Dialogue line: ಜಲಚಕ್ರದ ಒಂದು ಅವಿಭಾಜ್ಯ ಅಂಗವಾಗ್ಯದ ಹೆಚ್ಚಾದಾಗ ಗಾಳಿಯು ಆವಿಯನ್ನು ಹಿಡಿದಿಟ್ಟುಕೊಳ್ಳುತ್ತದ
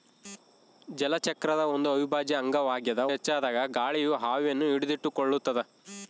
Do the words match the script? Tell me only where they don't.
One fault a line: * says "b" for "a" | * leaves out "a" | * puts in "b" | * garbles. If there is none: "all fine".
all fine